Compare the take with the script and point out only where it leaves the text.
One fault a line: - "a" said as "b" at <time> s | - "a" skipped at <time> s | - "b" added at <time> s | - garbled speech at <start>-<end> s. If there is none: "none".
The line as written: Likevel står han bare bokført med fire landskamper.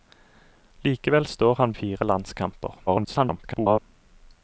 - "bare bokført med" skipped at 1.7 s
- garbled speech at 2.9-3.8 s